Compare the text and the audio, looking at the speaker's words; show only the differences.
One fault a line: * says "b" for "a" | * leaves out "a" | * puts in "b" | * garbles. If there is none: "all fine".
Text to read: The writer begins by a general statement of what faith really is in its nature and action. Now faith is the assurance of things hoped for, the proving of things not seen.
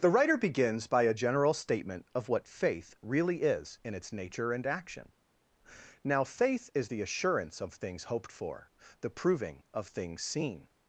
* leaves out "not"